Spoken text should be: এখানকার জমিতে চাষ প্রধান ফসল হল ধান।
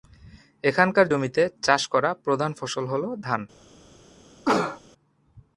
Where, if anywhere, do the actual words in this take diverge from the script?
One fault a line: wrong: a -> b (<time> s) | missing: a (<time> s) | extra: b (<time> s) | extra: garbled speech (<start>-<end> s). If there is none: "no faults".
extra: করা (1.9 s)